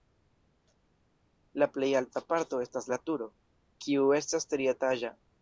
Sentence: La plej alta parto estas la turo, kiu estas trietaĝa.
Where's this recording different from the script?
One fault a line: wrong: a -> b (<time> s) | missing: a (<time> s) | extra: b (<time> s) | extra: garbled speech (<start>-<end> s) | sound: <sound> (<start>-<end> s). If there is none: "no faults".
no faults